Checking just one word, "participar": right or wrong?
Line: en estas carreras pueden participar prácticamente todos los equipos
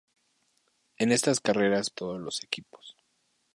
wrong